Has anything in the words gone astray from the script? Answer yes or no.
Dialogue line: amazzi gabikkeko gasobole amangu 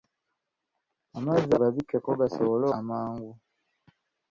no